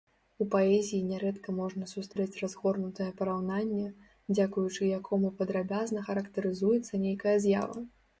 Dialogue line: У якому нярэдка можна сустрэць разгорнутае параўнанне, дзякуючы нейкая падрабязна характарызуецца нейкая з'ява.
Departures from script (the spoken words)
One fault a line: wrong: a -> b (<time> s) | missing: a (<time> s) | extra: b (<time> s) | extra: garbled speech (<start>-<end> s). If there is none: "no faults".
wrong: якому -> паэзіі (0.5 s)
wrong: нейкая -> якому (5.0 s)